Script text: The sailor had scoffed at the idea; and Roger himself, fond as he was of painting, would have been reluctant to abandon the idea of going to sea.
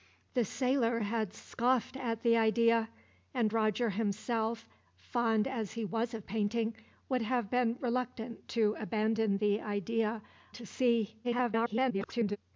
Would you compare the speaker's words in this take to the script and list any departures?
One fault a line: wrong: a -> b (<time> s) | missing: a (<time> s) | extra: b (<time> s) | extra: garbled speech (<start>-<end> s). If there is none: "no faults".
missing: of going (10.2 s)
extra: garbled speech (11.2-12.4 s)